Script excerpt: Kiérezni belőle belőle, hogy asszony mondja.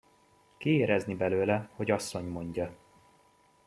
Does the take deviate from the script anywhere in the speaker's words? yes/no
yes